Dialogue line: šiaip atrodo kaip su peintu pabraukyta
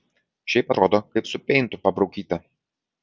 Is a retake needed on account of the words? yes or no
no